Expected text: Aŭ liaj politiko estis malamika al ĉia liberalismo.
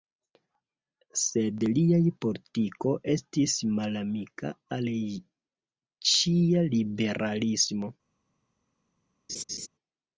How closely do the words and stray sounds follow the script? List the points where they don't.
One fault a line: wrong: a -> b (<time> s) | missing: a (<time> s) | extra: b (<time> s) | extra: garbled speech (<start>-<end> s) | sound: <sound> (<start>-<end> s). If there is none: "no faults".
wrong: Aŭ -> Sed (1.2 s)
sound: laugh (9.3-9.7 s)